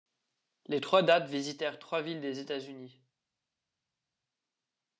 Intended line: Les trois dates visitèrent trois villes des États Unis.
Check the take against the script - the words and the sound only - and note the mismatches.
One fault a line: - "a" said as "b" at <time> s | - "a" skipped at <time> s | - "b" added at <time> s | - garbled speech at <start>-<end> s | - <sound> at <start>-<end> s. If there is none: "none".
none